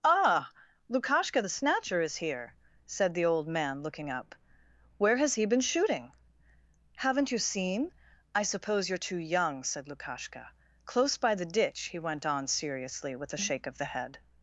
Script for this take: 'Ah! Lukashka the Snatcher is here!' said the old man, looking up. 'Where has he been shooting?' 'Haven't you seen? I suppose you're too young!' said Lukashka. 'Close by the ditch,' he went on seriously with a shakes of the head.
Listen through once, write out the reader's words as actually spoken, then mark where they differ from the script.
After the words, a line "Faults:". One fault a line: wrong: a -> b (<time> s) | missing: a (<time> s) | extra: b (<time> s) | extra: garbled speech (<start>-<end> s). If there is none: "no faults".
'Ah! Lukashka the Snatcher is here!' said the old man, looking up. 'Where has he been shooting?' 'Haven't you seen? I suppose you're too young!' said Lukashka. 'Close by the ditch,' he went on seriously with a shake of the head.
Faults:
wrong: shakes -> shake (13.4 s)